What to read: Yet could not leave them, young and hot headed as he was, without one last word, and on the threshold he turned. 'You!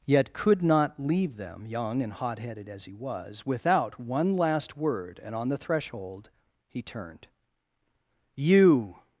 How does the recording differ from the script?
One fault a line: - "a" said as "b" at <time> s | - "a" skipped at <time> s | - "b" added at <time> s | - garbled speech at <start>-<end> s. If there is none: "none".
none